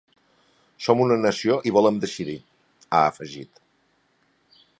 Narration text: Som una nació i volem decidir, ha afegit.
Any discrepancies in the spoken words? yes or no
no